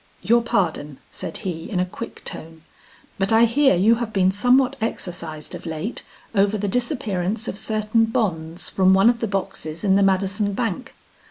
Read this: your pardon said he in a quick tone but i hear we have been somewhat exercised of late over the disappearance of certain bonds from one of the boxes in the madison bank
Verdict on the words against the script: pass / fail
fail